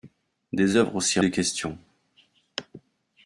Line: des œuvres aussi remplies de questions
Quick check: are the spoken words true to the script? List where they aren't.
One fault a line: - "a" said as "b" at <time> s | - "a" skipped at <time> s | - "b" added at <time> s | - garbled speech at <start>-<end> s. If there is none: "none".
- "remplies" skipped at 1.2 s